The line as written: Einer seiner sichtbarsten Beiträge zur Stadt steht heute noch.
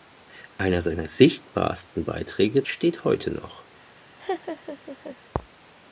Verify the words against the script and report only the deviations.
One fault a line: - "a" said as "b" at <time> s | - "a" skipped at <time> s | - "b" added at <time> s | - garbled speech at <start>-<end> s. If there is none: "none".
- "zur Stadt" skipped at 2.6 s